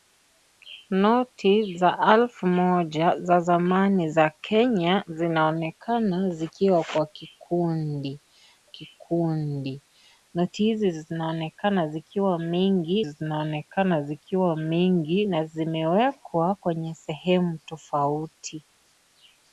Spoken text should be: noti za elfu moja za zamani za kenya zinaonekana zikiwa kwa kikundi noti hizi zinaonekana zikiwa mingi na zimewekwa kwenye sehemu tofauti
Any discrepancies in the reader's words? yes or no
yes